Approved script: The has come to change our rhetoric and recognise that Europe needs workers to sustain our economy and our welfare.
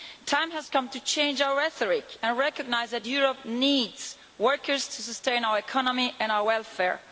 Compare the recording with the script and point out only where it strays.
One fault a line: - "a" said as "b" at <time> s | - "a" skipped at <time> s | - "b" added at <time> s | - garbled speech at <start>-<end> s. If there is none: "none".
- "time" added at 0.2 s